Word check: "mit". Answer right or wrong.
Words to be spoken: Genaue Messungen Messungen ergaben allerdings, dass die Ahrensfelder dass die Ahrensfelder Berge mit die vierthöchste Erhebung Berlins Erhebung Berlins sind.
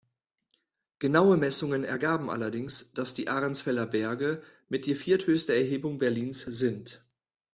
right